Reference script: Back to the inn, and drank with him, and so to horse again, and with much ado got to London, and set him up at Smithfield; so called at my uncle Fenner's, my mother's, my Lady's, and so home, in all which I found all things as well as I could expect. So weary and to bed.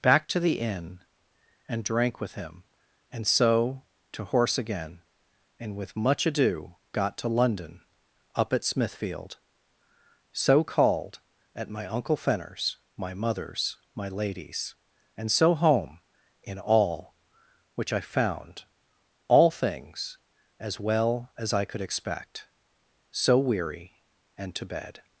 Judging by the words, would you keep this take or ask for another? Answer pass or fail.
fail